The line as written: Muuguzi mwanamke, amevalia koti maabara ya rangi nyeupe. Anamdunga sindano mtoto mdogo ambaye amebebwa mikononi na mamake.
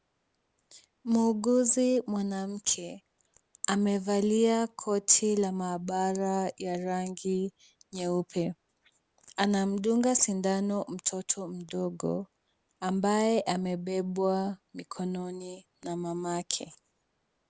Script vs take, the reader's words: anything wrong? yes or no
yes